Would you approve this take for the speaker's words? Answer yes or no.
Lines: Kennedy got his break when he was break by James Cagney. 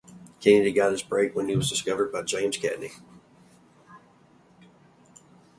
no